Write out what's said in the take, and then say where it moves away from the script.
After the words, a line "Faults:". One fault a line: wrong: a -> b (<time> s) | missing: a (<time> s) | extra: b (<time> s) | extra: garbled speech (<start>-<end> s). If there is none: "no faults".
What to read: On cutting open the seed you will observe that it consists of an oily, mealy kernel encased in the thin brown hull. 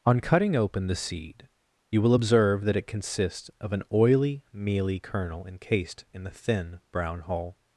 On cutting open the seed you will observe that it consists of an oily, mealy kernel encased in the thin brown hull.
Faults:
no faults